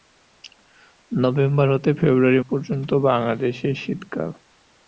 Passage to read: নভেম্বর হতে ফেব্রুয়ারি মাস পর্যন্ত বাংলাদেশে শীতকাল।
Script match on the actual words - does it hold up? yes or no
no